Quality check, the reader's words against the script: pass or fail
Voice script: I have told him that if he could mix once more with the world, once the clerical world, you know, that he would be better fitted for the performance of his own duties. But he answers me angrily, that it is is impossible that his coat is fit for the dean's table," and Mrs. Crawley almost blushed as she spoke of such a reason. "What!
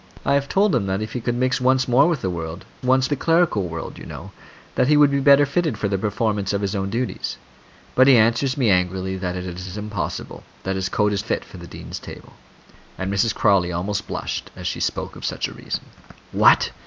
pass